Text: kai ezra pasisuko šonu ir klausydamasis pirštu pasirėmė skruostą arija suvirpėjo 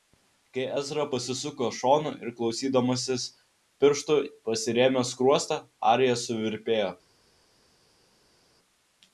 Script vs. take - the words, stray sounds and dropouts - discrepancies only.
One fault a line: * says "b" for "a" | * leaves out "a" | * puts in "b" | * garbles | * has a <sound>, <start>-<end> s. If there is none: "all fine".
all fine